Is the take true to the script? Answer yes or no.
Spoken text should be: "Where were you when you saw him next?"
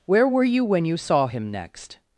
yes